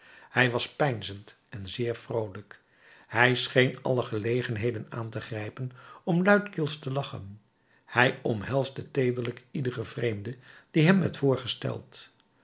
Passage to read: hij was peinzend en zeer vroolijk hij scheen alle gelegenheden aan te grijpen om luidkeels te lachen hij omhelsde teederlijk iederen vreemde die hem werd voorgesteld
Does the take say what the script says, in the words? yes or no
yes